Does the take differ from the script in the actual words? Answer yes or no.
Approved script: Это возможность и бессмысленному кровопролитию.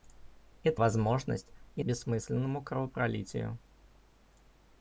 no